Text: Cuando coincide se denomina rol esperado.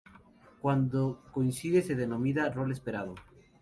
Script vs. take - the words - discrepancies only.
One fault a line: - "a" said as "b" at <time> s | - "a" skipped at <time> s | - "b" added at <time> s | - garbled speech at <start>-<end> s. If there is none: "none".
none